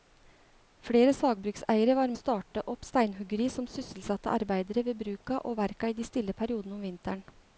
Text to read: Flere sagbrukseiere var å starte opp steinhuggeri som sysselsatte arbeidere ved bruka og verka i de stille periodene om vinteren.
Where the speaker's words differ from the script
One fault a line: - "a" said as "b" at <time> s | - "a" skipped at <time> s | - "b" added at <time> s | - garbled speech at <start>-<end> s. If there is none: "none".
none